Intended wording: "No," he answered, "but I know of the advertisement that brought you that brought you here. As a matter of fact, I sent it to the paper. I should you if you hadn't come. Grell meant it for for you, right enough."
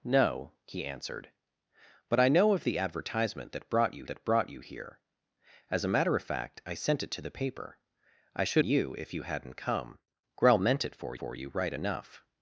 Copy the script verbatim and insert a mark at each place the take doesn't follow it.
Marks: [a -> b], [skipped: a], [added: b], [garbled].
"No," he answered, "but I know of the advertisement that brought you that brought you here. As a matter of fact, I sent it to the paper. I should you if you hadn't come. Grell meant it for for you, right enough."